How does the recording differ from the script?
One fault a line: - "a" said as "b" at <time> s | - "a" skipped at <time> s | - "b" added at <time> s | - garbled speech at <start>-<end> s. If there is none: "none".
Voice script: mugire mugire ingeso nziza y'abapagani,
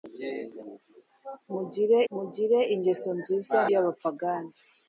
none